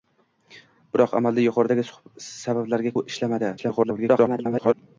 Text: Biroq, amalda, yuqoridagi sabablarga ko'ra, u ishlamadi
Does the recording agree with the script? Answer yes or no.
no